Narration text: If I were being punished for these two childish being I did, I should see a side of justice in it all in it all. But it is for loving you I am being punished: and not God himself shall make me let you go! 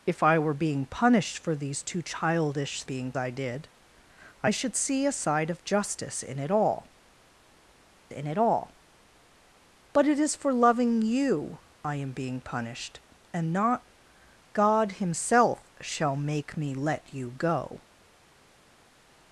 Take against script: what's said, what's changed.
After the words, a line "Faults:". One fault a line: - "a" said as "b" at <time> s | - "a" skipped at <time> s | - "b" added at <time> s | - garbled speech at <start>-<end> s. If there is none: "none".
If I were being punished for these two childish being I did, I should see a side of justice in it all in it all. But it is for loving you I am being punished: and not God himself shall make me let you go!
Faults:
none